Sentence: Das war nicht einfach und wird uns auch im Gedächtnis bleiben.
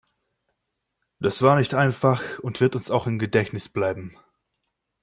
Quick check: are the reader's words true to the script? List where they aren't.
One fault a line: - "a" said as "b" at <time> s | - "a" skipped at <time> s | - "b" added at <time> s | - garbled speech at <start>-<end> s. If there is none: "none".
none